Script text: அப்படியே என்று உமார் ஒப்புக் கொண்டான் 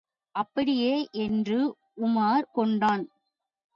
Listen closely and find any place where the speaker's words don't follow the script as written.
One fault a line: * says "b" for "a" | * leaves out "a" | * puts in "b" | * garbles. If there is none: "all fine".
* leaves out "ஒப்புக்"